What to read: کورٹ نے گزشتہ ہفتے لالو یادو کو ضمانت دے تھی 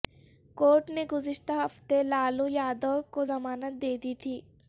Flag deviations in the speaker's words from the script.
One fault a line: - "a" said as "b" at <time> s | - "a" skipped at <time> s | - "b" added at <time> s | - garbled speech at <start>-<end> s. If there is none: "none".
- "دی" added at 4.0 s